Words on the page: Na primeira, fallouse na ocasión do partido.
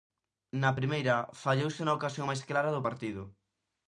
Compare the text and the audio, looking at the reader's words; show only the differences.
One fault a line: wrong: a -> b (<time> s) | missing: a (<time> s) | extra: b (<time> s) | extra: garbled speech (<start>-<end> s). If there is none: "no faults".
extra: máis clara (2.3 s)